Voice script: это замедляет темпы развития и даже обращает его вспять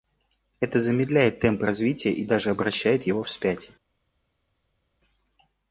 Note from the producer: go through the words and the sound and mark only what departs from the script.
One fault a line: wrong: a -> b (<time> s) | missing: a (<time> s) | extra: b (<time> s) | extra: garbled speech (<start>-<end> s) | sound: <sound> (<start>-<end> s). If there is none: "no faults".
no faults